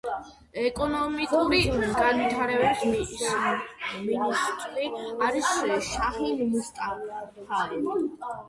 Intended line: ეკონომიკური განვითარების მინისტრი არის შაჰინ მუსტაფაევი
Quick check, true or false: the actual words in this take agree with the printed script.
true